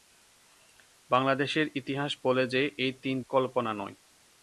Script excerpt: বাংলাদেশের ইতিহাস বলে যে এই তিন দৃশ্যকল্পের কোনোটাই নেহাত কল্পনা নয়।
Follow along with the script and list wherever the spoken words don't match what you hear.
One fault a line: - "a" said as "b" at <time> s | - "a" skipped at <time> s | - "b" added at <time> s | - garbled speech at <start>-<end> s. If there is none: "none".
- "দৃশ্যকল্পের কোনোটাই নেহাত" skipped at 3.1 s